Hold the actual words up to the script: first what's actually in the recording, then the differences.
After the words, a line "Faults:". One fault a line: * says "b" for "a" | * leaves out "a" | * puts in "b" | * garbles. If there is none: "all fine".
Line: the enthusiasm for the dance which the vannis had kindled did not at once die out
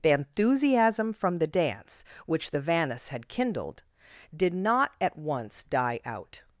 the enthusiasm from the dance which the vannis had kindled did not at once die out
Faults:
* says "from" for "for"